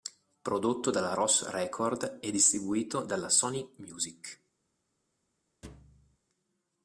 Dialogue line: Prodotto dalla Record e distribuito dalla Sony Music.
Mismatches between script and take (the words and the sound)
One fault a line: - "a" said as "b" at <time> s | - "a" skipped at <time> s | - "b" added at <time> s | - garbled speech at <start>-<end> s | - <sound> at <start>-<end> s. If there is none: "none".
- "Ros" added at 1.1 s
- thud at 5.6-6.2 s